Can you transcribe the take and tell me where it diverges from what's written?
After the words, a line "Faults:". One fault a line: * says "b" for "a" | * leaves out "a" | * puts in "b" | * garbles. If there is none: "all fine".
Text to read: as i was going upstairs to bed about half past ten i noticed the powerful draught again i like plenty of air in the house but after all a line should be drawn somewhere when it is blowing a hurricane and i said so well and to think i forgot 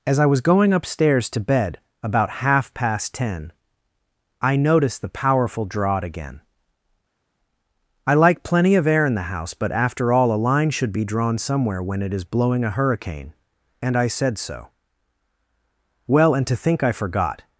as i was going upstairs to bed about half past ten i noticed the powerful draught again i like plenty of air in the house but after all a line should be drawn somewhere when it is blowing a hurricane and i said so well and to think i forgot
Faults:
all fine